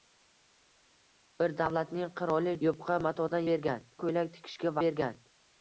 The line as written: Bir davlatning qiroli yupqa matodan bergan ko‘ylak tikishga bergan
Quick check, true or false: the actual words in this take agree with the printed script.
true